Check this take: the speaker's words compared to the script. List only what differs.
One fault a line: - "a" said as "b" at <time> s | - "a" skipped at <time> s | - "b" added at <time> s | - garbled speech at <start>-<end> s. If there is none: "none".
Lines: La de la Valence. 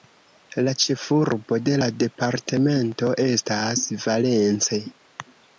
- "ĉefurbo" added at 0.8 s
- "departemento estas" added at 2.1 s